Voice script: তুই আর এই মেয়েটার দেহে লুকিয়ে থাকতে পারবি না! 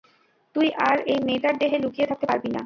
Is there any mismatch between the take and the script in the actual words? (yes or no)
no